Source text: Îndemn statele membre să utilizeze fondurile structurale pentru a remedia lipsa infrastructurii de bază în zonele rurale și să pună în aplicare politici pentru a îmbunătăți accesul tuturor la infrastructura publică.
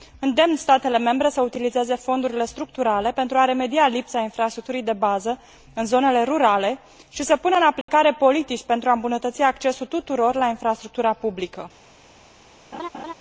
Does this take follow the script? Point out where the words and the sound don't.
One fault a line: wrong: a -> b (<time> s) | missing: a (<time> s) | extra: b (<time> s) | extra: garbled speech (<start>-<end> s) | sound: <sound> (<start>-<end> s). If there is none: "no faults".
sound: dropout (7.8-7.9 s)
sound: laugh (12.7-13.1 s)